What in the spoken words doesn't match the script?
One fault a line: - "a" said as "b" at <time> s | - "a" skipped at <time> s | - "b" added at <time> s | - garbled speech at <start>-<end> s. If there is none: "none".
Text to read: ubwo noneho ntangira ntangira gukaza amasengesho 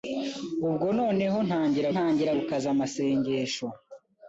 none